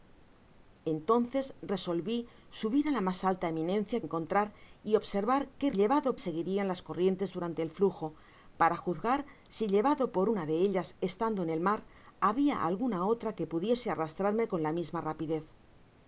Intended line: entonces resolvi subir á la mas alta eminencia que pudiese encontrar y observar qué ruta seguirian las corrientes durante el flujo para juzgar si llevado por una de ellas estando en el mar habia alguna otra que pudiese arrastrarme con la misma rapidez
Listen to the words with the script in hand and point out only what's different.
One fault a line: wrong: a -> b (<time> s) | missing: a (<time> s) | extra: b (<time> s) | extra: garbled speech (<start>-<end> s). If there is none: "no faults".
missing: que pudiese (4.0 s)
wrong: ruta -> llevado (5.8 s)